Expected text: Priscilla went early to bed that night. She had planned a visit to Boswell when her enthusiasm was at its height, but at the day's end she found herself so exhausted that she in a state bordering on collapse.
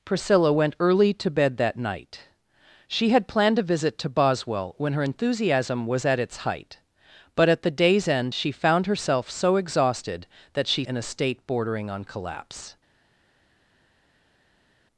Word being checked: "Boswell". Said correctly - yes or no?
yes